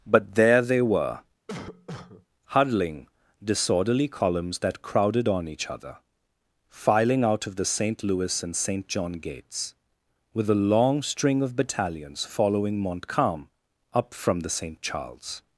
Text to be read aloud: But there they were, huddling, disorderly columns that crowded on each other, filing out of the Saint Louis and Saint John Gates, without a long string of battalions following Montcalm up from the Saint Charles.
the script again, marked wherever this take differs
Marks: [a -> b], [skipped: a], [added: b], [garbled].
But there they were, huddling, disorderly columns that crowded on each other, filing out of the Saint Louis and Saint John Gates, [without -> with] a long string of battalions following Montcalm up from the Saint Charles.